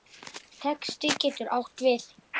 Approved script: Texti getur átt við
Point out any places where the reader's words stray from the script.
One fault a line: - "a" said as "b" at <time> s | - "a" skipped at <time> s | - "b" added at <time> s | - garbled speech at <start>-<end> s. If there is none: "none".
none